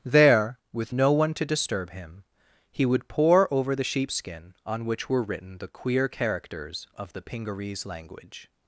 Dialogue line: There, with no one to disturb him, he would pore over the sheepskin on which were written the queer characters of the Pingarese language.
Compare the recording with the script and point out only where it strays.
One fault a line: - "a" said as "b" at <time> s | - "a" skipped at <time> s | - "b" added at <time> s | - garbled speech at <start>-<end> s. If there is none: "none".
none